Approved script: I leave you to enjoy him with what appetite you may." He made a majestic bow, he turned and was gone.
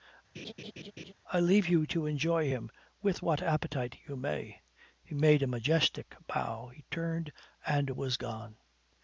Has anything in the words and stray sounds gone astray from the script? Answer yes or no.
yes